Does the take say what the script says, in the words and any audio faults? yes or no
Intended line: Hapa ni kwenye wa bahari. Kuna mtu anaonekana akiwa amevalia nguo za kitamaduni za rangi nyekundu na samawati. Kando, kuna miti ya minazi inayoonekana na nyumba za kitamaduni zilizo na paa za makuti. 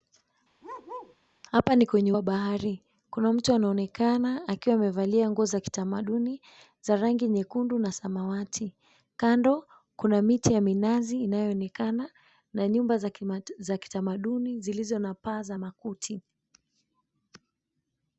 no